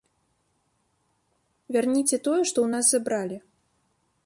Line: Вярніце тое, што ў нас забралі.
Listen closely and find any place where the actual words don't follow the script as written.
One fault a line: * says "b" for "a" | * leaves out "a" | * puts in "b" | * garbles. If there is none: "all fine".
all fine